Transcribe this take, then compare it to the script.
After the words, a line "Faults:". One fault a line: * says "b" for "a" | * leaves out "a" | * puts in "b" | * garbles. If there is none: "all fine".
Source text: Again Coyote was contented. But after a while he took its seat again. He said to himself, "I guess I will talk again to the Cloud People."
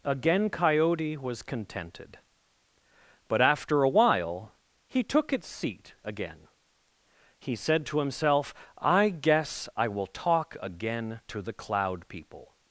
Again Coyote was contented. But after a while he took its seat again. He said to himself, "I guess I will talk again to the Cloud People."
Faults:
all fine